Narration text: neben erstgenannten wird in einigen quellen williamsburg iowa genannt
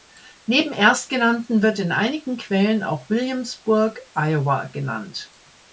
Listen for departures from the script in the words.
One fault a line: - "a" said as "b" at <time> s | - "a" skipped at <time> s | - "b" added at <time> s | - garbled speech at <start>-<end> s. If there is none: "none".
- "auch" added at 2.8 s